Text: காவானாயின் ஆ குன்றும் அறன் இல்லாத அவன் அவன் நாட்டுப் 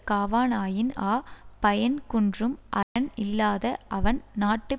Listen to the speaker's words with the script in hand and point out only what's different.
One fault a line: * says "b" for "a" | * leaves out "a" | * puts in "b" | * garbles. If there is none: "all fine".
* puts in "பயன்"
* leaves out "அவன்"